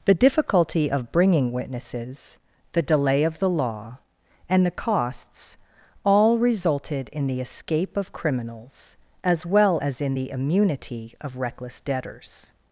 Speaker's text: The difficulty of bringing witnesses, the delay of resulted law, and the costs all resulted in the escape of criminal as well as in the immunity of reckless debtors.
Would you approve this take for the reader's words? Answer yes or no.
no